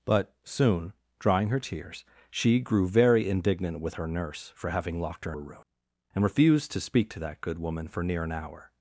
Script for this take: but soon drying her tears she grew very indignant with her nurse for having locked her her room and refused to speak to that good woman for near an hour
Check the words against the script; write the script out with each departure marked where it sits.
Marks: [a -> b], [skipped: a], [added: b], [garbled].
but soon drying her tears she grew very indignant with her nurse for having locked her her room and refused to speak to that good woman for near an hour